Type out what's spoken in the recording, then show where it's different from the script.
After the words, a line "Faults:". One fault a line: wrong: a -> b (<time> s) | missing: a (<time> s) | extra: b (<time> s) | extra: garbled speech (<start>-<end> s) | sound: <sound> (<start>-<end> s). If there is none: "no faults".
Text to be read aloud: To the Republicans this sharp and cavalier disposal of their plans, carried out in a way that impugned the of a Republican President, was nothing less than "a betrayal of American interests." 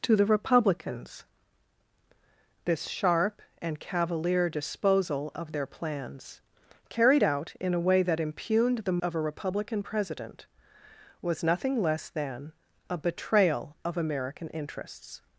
To the Republicans this sharp and cavalier disposal of their plans, carried out in a way that impugned the of a Republican President, was nothing less than "a betrayal of American interests."
Faults:
no faults